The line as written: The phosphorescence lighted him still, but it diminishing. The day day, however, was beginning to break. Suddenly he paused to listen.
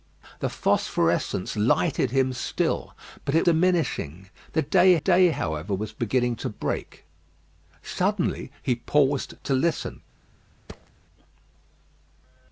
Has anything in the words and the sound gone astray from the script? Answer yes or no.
yes